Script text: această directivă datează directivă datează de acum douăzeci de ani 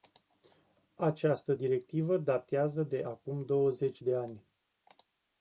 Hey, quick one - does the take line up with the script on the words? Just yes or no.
no